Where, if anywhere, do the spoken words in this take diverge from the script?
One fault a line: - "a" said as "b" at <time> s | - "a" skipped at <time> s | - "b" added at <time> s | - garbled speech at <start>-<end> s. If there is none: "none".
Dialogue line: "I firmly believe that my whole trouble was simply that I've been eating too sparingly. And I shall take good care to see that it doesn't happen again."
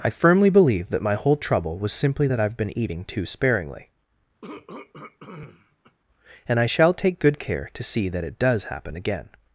- "doesn't" said as "does" at 8.4 s